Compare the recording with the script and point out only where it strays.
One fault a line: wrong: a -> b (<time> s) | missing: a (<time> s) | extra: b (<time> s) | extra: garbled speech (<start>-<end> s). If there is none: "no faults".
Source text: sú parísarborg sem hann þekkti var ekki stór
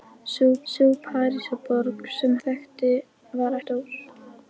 extra: sú (0.7 s)
missing: hann (2.4 s)
missing: ekki (3.6 s)